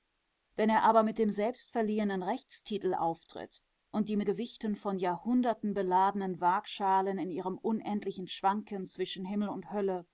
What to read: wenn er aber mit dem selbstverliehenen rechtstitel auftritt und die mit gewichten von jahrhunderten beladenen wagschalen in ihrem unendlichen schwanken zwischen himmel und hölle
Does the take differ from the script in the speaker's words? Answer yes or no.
no